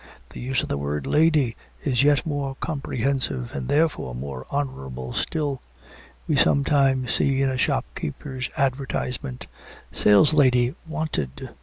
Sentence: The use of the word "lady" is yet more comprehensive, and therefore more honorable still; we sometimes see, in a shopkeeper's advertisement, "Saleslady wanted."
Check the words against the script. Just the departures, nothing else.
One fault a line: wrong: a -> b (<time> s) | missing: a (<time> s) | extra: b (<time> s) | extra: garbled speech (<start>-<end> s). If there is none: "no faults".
no faults